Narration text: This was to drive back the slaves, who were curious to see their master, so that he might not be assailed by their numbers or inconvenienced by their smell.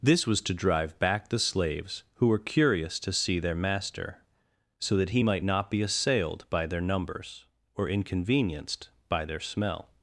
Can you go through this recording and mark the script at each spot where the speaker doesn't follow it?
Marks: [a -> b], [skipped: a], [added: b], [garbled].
This was to drive back the slaves, who were curious to see their master, so that he might not be assailed by their numbers or inconvenienced by their smell.